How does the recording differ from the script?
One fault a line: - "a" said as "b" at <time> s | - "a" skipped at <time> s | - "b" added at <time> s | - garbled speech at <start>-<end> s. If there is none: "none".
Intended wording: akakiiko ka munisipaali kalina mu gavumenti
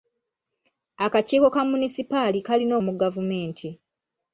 none